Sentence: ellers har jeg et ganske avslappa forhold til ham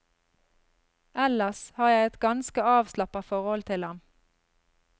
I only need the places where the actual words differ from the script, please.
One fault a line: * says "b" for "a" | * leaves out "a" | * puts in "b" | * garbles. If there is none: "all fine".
all fine